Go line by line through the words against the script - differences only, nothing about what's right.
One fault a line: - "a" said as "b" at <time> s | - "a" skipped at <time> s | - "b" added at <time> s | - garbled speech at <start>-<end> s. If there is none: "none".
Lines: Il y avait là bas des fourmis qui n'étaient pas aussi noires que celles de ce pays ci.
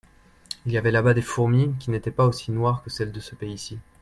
none